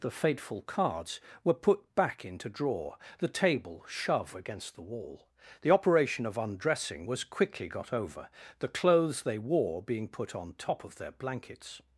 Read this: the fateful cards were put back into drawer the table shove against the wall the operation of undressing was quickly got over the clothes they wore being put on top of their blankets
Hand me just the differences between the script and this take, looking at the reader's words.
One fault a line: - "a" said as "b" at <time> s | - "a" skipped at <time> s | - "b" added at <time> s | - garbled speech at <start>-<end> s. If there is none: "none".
none